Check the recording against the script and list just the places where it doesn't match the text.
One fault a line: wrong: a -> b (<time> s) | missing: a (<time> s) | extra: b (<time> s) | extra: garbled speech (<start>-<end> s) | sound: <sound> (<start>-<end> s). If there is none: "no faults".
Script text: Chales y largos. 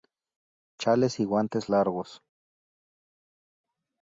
extra: guantes (1.2 s)